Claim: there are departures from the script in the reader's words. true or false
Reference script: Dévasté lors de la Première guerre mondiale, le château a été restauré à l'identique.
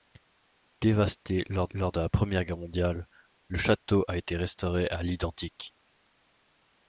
true